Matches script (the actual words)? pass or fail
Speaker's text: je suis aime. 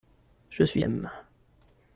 pass